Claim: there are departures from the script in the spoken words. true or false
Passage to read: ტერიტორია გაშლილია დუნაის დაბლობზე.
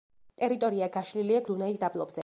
false